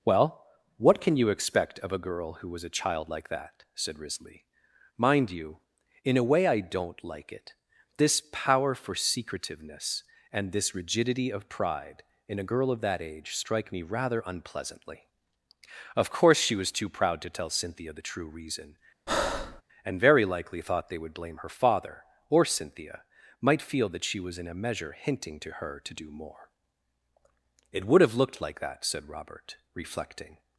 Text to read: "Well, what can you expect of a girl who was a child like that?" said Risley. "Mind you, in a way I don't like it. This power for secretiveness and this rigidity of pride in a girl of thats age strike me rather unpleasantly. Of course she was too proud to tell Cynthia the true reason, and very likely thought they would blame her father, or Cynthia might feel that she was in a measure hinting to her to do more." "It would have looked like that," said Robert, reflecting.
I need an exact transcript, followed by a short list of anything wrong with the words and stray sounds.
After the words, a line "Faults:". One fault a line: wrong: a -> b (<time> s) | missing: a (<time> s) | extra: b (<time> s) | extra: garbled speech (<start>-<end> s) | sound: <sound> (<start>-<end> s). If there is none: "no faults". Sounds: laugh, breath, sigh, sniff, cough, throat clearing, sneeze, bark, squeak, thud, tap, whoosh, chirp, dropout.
"Well, what can you expect of a girl who was a child like that?" said Risley. "Mind you, in a way I don't like it. This power for secretiveness and this rigidity of pride in a girl of that age strike me rather unpleasantly. Of course she was too proud to tell Cynthia the true reason, and very likely thought they would blame her father, or Cynthia might feel that she was in a measure hinting to her to do more." "It would have looked like that," said Robert, reflecting.
Faults:
wrong: thats -> that (12.8 s)
sound: breath (19.1-19.6 s)